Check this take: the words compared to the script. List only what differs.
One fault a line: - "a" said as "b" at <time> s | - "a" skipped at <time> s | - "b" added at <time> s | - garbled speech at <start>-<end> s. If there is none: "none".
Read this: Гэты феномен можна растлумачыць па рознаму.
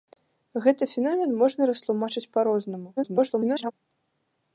- garbled speech at 3.0-3.7 s